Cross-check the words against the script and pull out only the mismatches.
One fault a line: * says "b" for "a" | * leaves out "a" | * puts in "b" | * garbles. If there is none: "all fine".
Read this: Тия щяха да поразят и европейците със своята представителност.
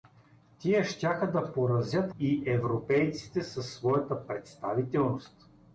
all fine